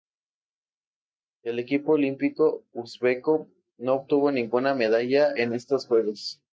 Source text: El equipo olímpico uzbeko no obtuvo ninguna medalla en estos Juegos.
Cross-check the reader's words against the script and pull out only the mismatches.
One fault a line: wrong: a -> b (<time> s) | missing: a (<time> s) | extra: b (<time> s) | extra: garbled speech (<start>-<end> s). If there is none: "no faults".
no faults